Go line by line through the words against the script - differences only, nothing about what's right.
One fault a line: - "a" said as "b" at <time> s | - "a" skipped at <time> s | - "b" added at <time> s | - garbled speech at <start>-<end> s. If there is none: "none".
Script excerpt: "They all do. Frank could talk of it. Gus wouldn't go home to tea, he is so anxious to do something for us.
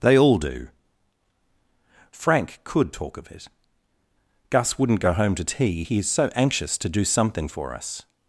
none